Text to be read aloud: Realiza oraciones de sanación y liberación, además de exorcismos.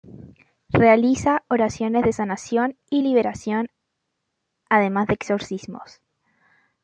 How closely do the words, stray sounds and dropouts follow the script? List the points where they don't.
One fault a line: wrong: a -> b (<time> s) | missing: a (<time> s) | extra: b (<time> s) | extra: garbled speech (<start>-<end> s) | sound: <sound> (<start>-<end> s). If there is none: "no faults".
no faults